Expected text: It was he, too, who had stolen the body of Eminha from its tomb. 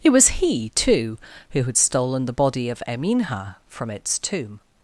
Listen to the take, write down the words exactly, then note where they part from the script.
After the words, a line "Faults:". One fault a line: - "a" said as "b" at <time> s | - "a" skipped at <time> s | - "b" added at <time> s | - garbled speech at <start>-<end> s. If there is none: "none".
It was he, too, who had stolen the body of Eminha from its tomb.
Faults:
none